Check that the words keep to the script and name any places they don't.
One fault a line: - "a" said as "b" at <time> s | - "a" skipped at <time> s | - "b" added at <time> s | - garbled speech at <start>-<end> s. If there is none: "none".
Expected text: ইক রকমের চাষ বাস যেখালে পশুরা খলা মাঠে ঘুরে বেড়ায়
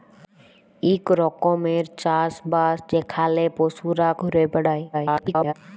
- "খলা মাঠে" skipped at 4.1 s
- garbled speech at 4.9-5.5 s